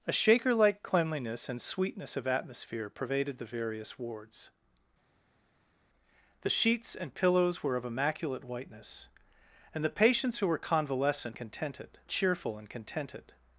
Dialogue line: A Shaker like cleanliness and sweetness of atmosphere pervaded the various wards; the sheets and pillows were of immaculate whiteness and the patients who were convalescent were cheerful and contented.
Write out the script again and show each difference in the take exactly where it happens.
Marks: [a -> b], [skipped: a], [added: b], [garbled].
A Shaker like cleanliness and sweetness of atmosphere pervaded the various wards; the sheets and pillows were of immaculate whiteness and the patients who were convalescent [were -> contented] cheerful and contented.